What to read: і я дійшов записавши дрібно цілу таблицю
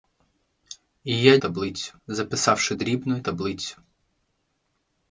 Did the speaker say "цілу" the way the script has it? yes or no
no